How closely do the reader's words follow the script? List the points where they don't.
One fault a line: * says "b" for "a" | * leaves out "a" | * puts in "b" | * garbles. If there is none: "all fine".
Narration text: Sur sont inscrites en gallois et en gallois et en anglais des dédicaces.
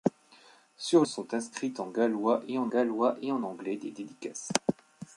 all fine